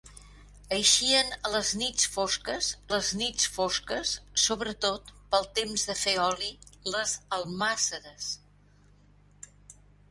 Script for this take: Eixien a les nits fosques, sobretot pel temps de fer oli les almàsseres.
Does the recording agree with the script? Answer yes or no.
no